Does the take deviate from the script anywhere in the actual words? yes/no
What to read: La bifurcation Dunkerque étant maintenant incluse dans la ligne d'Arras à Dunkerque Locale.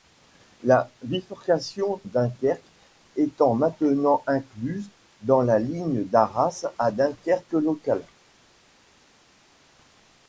no